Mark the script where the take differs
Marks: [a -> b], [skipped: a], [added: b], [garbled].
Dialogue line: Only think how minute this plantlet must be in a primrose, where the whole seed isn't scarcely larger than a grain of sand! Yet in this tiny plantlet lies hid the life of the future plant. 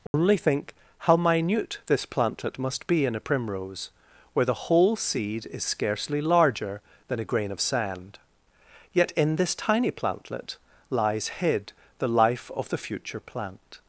Only think how minute this plantlet must be in a primrose, where the whole seed [isn't -> is] scarcely larger than a grain of sand! Yet in this tiny plantlet lies hid the life of the future plant.